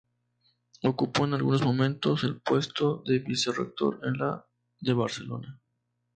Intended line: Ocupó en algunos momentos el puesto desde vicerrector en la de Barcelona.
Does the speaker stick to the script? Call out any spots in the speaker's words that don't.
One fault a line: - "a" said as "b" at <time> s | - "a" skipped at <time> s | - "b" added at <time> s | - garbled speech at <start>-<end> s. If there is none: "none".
- "desde" said as "de" at 3.1 s